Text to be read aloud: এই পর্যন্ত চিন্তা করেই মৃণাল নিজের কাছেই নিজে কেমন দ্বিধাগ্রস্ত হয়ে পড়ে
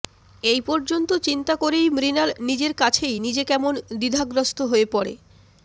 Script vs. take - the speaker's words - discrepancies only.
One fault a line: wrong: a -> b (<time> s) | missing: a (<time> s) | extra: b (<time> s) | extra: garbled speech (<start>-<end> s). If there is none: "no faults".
no faults